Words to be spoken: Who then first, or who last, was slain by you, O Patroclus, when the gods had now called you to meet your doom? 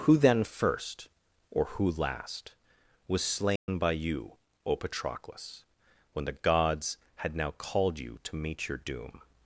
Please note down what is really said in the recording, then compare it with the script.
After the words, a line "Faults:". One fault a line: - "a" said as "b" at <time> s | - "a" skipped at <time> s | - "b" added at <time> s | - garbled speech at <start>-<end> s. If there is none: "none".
Who then first, or who last, was slain by you, O Patroclus, when the gods had now called you to meet your doom?
Faults:
none